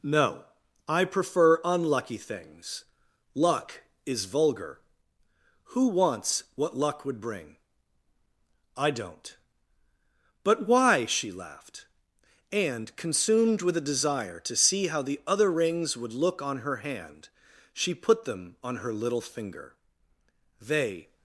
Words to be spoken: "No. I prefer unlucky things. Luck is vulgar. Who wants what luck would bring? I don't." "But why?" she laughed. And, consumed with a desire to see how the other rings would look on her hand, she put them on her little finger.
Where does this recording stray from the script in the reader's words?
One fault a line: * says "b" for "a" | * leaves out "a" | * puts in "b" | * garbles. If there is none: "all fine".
* puts in "They"